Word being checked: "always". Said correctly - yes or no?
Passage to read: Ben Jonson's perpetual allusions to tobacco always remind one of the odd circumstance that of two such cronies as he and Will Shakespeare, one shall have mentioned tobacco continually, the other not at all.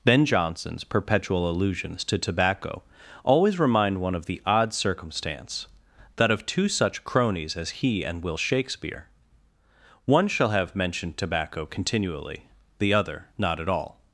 yes